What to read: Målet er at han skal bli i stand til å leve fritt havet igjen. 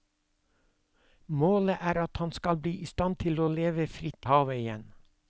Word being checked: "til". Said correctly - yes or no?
yes